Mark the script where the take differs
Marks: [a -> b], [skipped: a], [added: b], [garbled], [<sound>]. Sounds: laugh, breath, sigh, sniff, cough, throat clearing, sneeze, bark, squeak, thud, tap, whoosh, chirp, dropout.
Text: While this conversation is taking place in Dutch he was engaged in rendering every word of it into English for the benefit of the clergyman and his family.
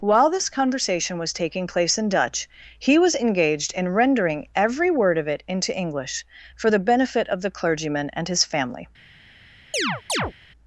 While this conversation [is -> was] taking place in Dutch he was engaged in rendering every word of it into English for the benefit of the clergyman and his family. [chirp]